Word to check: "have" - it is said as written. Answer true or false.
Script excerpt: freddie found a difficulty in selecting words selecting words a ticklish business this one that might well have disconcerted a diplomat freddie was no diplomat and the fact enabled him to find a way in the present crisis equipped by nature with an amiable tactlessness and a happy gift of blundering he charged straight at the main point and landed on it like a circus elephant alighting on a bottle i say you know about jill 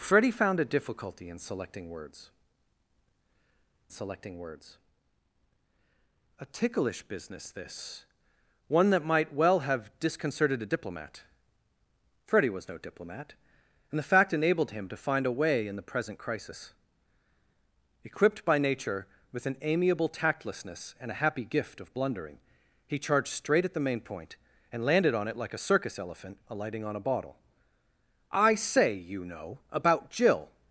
true